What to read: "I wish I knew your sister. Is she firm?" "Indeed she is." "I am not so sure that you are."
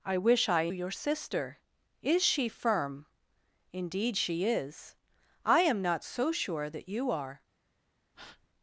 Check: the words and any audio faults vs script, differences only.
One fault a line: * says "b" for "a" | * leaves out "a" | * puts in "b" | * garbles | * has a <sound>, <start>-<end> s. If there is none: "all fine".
* leaves out "knew"
* has a breath, 8.1-8.5 s